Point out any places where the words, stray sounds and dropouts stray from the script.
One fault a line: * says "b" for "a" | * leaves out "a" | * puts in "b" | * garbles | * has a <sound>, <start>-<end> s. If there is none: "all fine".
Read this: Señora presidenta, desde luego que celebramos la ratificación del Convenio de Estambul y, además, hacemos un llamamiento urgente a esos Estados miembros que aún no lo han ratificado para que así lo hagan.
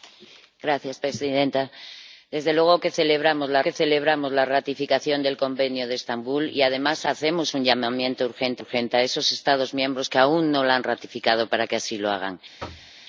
* puts in "que celebramos la"
* puts in "urgente"
* has a thud, 12.6-12.9 s